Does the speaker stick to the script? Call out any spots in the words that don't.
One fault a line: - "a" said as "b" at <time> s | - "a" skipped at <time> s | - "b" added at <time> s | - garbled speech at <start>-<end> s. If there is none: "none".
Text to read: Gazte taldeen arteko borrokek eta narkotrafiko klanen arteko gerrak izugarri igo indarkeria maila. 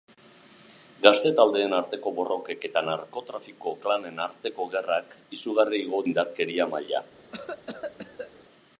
none